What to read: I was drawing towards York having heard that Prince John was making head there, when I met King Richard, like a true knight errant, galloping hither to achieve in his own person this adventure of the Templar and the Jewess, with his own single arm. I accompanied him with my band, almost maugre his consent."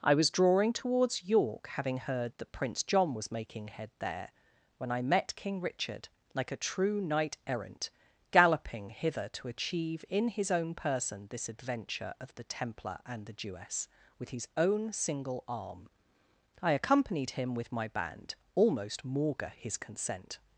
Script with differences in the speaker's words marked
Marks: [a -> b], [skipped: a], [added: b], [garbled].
I was drawing towards York having heard that Prince John was making head there, when I met King Richard, like a true knight errant, galloping hither to achieve in his own person this adventure of the Templar and the Jewess, with his own single arm. I accompanied him with my band, almost maugre his consent."